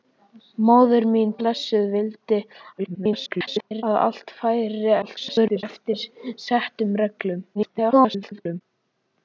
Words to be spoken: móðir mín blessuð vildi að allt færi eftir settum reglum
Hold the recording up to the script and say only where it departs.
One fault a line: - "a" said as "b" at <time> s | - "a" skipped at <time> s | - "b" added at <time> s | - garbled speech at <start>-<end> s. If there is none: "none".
- garbled speech at 2.8-3.8 s
- garbled speech at 5.0-5.6 s
- garbled speech at 7.5-8.6 s